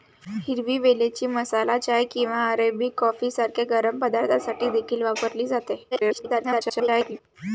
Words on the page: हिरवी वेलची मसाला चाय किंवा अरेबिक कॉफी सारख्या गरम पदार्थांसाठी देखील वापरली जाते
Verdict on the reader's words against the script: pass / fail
fail